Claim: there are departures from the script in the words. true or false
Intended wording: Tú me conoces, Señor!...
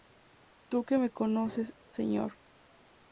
true